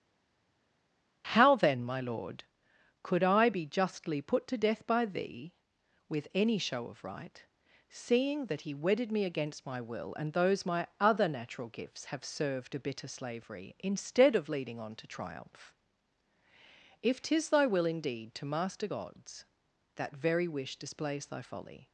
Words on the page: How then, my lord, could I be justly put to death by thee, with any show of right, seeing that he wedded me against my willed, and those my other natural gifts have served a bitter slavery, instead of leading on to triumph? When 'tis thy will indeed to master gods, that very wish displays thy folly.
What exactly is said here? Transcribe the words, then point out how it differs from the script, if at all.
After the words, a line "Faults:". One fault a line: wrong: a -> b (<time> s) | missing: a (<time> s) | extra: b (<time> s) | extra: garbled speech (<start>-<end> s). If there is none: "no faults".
How then, my lord, could I be justly put to death by thee, with any show of right, seeing that he wedded me against my will, and those my other natural gifts have served a bitter slavery, instead of leading on to triumph? If 'tis thy will indeed to master gods, that very wish displays thy folly.
Faults:
wrong: willed -> will (9.8 s)
wrong: When -> If (17.0 s)